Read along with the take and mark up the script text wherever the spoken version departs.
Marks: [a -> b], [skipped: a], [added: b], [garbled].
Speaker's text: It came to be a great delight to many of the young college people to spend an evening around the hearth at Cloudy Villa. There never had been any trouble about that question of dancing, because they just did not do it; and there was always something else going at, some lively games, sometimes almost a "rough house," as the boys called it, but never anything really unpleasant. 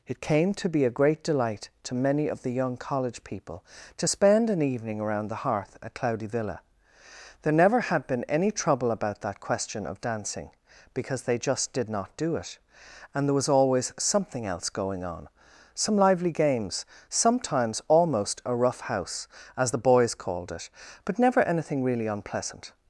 It came to be a great delight to many of the young college people to spend an evening around the hearth at Cloudy Villa. There never had been any trouble about that question of dancing, because they just did not do it; and there was always something else going [at, -> on] some lively games, sometimes almost a "rough house," as the boys called it, but never anything really unpleasant.